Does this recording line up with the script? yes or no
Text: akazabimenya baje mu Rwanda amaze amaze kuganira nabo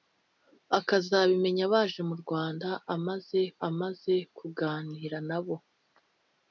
yes